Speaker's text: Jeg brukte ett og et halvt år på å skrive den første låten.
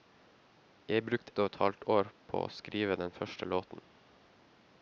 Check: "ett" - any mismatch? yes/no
yes